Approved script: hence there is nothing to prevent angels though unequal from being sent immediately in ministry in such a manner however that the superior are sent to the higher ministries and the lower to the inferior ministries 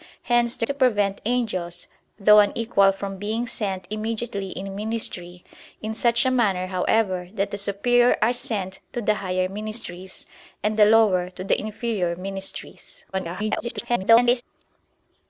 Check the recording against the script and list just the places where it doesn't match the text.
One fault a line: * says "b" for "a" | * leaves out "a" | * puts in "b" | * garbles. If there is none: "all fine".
* leaves out "is nothing"
* garbles